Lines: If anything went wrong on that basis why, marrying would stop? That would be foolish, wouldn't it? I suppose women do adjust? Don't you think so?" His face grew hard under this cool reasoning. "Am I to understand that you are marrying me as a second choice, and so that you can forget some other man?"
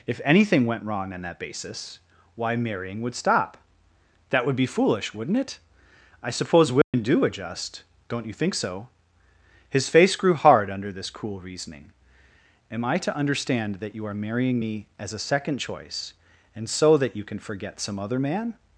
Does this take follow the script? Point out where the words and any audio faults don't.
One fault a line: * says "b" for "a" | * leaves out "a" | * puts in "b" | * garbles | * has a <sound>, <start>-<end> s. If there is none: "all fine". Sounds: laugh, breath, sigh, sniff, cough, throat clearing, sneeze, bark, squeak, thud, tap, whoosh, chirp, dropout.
* has a dropout, 6.8-6.9 s